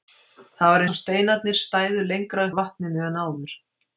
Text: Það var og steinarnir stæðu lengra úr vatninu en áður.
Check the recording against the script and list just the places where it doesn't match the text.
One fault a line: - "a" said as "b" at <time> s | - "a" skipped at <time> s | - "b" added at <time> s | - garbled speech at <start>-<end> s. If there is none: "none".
none